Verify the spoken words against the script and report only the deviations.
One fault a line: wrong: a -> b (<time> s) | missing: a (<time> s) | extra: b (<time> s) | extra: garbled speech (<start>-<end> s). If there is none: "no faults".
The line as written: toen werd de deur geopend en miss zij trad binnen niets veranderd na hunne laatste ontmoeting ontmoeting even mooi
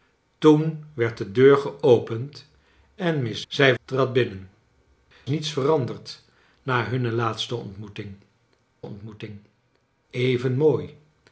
no faults